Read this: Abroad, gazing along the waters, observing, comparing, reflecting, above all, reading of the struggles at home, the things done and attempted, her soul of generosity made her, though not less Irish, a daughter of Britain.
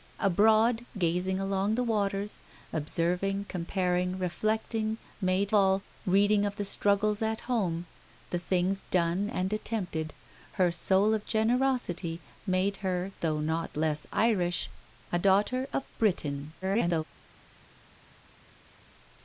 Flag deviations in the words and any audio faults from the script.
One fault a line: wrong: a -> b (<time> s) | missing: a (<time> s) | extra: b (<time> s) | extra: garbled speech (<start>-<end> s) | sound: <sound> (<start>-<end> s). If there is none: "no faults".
wrong: above -> made (5.2 s)
extra: garbled speech (16.6-17.0 s)